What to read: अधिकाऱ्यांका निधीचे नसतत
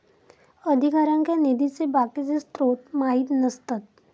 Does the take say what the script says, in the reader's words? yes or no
no